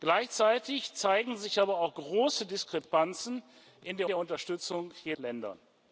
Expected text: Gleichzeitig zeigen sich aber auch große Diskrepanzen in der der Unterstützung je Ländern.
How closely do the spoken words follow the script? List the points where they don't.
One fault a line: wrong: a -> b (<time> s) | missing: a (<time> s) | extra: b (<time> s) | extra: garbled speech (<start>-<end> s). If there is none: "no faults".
no faults